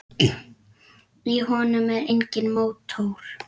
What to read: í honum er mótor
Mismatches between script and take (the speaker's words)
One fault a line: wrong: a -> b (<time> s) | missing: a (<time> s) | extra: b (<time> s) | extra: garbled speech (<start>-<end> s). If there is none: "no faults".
extra: enginn (2.1 s)